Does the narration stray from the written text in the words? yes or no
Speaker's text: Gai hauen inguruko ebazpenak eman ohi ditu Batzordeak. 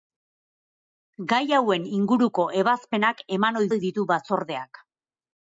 yes